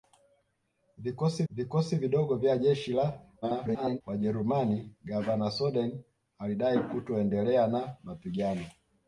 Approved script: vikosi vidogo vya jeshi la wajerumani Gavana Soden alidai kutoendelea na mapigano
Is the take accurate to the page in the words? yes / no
no